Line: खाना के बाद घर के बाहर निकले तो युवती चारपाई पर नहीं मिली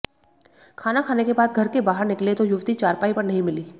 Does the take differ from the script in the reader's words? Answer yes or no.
yes